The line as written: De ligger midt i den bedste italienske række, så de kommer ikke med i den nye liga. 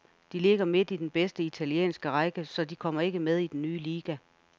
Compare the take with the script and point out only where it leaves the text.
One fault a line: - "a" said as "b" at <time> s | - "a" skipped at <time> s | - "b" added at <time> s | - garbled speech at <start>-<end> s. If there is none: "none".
none